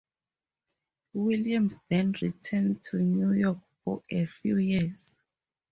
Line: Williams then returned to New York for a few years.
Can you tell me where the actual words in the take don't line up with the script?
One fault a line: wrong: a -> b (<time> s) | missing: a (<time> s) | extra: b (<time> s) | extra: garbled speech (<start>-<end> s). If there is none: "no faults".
no faults